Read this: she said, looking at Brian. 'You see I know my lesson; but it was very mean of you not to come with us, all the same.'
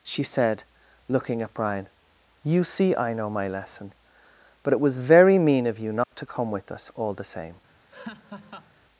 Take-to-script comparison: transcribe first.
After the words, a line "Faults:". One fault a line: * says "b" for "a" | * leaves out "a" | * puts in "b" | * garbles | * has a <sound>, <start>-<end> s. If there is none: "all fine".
she said, looking at Brian. 'You see I know my lesson; but it was very mean of you not to come with us, all the same.'
Faults:
* has a dropout, 6.0-6.1 s
* has a laugh, 7.9-8.7 s